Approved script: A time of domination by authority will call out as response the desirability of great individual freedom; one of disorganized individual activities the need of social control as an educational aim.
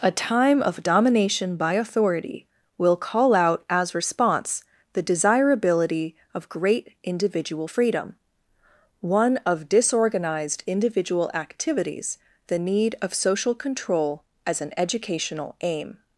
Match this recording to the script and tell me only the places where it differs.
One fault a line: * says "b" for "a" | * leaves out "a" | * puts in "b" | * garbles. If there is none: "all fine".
all fine